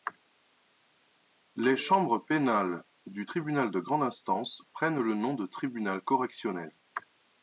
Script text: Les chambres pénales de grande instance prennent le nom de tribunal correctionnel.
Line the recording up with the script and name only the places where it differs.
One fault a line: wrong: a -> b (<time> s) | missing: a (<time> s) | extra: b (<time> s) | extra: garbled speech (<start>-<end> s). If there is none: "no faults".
extra: du tribunal (3.0 s)